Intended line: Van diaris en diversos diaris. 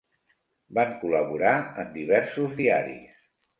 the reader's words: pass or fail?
fail